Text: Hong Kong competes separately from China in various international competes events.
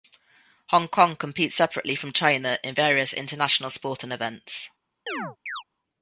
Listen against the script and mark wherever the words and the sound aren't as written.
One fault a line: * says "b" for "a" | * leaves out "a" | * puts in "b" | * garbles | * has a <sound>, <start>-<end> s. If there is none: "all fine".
* says "sporting" for "competes"
* has a chirp, 5.1-5.6 s